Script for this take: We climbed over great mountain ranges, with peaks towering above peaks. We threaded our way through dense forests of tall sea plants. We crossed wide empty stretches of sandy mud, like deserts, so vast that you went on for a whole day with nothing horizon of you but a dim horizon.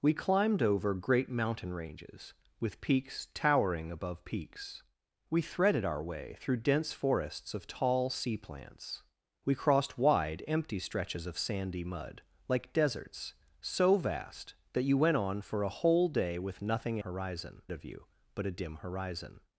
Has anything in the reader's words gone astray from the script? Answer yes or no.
no